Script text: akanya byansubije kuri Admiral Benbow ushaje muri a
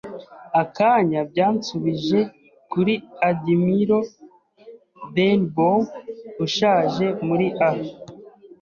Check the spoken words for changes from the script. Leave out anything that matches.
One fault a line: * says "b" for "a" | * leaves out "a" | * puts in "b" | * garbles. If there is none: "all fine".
all fine